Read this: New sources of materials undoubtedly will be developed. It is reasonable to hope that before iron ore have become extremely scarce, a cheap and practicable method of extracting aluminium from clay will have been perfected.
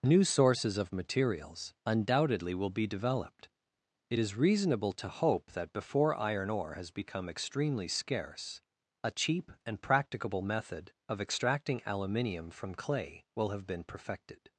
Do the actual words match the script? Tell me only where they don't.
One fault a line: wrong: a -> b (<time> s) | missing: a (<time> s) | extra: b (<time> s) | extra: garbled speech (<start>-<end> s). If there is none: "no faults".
wrong: have -> has (6.8 s)